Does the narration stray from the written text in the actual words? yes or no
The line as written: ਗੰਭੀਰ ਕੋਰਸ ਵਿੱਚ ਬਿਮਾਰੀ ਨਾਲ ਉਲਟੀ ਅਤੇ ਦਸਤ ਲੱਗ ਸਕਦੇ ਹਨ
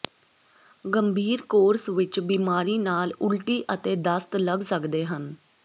no